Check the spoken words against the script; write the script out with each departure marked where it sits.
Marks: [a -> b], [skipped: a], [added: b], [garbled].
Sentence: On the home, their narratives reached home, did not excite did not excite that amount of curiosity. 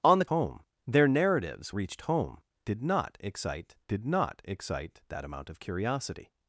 On the home, their narratives reached home, did not excite did not excite that amount of curiosity.